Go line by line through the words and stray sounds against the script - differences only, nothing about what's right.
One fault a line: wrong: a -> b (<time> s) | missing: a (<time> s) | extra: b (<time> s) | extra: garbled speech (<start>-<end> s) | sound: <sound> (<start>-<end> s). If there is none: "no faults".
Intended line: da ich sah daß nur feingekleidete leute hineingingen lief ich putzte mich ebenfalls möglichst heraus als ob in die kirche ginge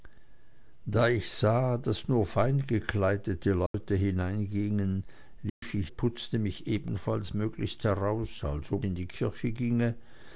sound: dropout (3.7-3.7 s)
sound: dropout (5.5-5.6 s)